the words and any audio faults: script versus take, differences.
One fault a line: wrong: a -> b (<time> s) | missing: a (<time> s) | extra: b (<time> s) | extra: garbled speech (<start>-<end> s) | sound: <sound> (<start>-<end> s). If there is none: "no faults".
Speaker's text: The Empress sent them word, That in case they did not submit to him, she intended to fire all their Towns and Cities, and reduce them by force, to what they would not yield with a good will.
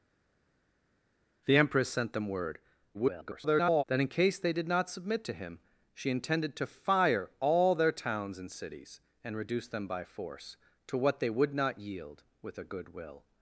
extra: garbled speech (2.9-3.8 s)